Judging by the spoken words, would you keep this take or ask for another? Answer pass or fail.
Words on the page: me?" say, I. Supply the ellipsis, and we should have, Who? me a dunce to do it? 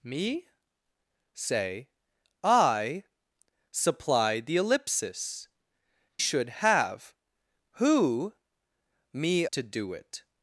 fail